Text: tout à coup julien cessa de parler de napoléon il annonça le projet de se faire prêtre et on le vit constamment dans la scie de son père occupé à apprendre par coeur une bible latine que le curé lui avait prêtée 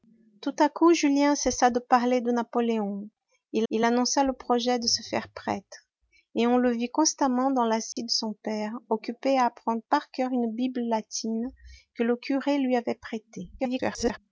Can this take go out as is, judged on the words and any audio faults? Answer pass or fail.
fail